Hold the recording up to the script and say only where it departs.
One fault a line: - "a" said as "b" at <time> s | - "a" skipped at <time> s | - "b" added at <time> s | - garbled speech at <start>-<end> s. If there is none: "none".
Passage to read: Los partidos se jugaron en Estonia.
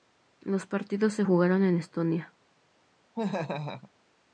none